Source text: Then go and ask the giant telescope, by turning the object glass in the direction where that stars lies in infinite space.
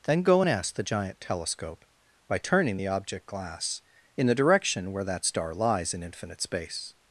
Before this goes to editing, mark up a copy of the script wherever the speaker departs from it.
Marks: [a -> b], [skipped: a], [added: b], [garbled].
Then go and ask the giant telescope, by turning the object glass in the direction where that [stars -> star] lies in infinite space.